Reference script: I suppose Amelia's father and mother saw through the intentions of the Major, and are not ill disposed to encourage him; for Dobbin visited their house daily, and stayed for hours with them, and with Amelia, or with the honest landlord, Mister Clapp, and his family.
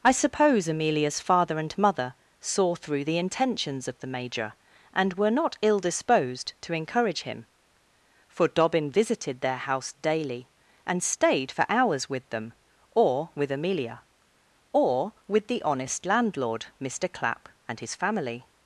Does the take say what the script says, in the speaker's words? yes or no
no